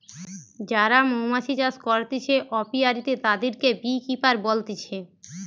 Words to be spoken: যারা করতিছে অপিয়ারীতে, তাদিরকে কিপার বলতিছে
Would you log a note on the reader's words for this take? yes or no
yes